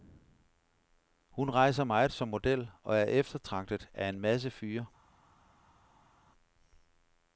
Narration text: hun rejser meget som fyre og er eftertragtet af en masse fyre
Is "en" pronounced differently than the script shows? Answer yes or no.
no